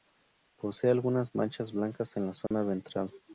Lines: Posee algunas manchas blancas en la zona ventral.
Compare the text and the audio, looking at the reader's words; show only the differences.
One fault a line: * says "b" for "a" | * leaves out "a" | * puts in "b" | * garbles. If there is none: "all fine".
all fine